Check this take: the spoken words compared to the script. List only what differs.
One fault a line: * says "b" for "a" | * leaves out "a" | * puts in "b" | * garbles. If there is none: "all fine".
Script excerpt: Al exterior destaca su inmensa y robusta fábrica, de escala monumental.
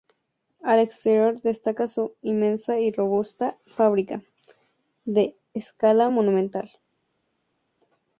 all fine